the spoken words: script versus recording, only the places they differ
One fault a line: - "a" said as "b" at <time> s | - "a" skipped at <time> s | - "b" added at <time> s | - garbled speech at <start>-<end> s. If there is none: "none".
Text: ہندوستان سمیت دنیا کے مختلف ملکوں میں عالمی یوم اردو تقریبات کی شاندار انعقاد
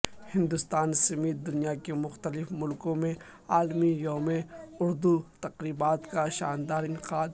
- "کی" said as "کا" at 6.1 s